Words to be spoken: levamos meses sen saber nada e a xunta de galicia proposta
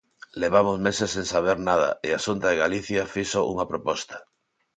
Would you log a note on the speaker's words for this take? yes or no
yes